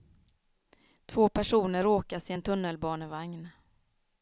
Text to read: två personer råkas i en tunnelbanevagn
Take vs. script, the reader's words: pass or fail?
pass